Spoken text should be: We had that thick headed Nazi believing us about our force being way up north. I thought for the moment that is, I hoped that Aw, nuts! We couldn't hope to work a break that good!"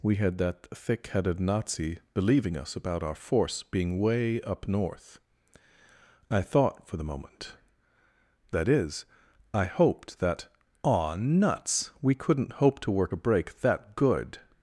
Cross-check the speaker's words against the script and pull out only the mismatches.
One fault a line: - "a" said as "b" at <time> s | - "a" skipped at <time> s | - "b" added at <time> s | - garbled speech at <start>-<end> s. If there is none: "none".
none